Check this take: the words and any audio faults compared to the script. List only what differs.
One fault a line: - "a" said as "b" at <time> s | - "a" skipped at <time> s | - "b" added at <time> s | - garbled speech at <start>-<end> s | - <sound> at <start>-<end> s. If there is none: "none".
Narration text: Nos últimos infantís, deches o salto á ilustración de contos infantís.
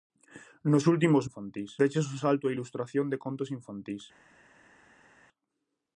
none